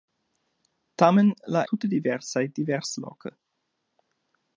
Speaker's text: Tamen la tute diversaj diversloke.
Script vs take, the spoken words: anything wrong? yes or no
no